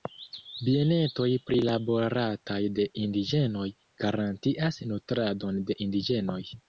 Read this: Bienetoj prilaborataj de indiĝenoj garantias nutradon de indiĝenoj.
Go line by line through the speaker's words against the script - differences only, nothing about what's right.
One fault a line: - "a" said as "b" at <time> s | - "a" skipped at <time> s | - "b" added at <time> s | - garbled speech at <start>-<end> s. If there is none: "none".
none